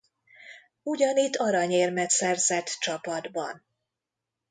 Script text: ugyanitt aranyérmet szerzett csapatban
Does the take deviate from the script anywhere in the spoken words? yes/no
no